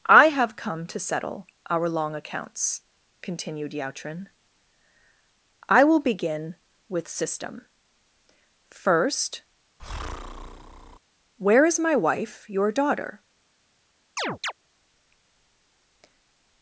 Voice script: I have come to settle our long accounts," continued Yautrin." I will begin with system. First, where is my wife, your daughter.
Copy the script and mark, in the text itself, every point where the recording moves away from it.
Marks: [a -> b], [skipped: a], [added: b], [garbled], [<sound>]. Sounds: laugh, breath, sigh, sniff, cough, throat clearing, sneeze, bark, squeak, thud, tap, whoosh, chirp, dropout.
I have come to settle our long accounts," continued Yautrin." I will begin with system. First, [breath] where is my wife, your daughter. [chirp]